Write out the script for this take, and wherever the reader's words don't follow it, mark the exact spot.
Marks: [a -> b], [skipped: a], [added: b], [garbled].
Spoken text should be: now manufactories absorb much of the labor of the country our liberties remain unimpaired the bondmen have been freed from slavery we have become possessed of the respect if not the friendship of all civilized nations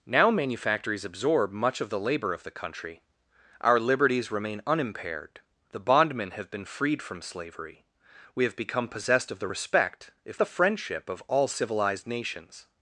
now manufactories absorb much of the labor of the country our liberties remain unimpaired the bondmen have been freed from slavery we have become possessed of the respect if [skipped: not] the friendship of all civilized nations